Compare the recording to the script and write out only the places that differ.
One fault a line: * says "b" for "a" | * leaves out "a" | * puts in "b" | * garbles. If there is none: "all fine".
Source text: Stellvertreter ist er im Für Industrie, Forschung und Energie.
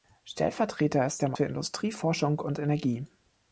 all fine